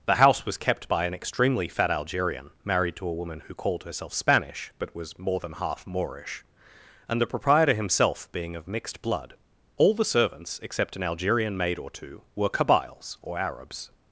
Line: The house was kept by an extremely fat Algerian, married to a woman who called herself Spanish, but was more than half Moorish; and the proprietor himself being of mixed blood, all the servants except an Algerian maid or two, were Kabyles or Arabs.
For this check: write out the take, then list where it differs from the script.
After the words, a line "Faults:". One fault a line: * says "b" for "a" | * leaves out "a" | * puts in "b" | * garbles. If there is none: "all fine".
The house was kept by an extremely fat Algerian, married to a woman who called herself Spanish, but was more than half Moorish; and the proprietor himself being of mixed blood, all the servants except an Algerian maid or two, were Kabyles or Arabs.
Faults:
all fine